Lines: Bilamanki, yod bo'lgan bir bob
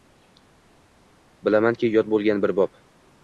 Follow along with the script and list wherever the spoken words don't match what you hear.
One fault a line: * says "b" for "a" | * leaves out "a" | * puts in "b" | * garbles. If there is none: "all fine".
all fine